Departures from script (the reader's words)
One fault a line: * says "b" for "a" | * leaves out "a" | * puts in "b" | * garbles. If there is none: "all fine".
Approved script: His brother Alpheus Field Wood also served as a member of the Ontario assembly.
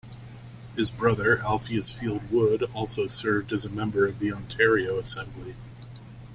all fine